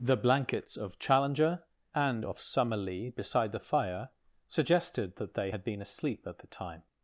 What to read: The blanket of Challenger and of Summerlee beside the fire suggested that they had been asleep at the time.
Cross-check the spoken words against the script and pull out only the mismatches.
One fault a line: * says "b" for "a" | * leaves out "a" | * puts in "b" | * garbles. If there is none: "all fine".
* says "blankets" for "blanket"